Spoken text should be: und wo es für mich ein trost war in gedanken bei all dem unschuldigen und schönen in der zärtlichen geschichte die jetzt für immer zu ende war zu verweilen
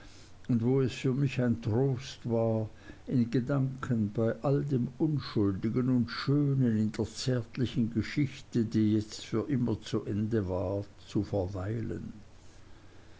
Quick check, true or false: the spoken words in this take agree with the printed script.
true